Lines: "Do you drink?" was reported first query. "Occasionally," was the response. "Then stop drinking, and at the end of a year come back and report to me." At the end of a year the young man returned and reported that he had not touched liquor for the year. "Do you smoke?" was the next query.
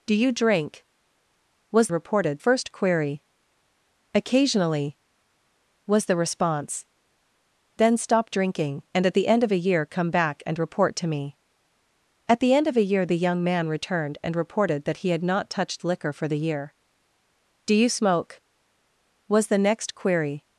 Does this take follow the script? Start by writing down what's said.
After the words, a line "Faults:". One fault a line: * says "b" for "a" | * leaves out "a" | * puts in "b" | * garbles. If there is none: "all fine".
"Do you drink?" was reported first query. "Occasionally," was the response. "Then stop drinking, and at the end of a year come back and report to me." At the end of a year the young man returned and reported that he had not touched liquor for the year. "Do you smoke?" was the next query.
Faults:
all fine